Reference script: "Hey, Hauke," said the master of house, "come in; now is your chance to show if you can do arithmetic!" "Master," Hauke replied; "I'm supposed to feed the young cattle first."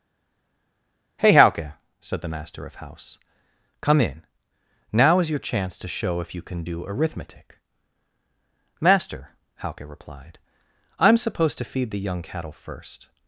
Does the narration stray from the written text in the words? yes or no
no